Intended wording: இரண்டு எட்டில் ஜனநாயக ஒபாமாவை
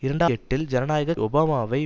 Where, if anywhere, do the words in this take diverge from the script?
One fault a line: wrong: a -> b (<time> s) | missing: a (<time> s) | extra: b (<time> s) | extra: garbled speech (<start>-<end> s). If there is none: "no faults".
no faults